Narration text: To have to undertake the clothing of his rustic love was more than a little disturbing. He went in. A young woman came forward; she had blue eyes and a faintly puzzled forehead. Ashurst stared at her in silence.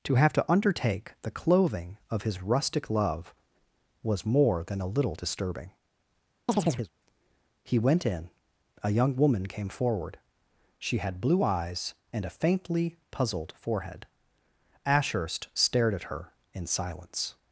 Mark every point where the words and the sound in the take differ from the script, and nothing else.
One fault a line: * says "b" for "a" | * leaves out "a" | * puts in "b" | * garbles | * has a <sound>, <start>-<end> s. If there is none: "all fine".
* has a chirp, 6.5-6.9 s